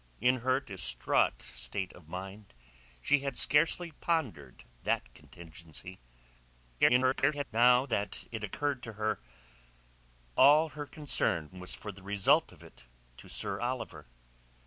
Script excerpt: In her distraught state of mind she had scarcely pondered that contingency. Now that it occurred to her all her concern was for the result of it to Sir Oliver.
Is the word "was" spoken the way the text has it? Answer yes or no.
yes